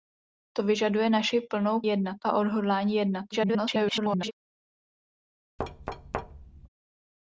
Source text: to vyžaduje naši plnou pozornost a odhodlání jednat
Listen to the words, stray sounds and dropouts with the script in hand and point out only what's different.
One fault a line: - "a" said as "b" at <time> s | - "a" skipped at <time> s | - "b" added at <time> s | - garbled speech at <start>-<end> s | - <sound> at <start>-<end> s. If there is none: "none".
- "pozornost" said as "jednat" at 1.9 s
- garbled speech at 3.3-4.3 s
- thud at 5.6-6.7 s